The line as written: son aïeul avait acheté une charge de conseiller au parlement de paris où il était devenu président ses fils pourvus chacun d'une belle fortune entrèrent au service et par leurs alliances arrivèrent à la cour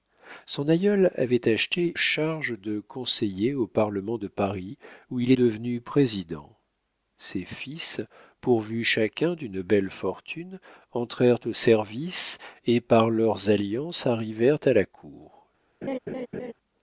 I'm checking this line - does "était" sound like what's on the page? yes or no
no